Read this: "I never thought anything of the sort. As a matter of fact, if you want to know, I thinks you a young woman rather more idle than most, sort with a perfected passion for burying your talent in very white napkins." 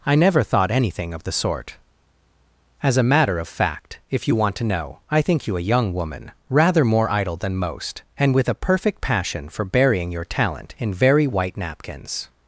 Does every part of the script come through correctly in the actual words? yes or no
no